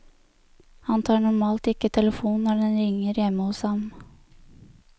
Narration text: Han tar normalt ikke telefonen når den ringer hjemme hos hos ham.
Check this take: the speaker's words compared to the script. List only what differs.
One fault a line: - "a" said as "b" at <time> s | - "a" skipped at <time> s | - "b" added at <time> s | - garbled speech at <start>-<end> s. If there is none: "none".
- "hos" skipped at 3.6 s